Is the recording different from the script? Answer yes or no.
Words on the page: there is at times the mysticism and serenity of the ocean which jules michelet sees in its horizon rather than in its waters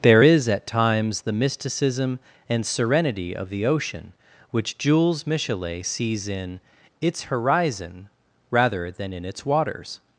no